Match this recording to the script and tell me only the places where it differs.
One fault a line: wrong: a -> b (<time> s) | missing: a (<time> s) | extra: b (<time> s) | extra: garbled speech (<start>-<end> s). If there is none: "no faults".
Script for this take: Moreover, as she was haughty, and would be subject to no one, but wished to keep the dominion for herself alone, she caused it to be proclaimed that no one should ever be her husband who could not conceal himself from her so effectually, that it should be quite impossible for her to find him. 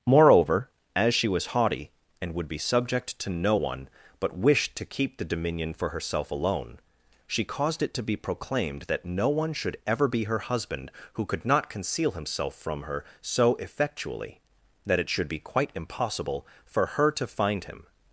no faults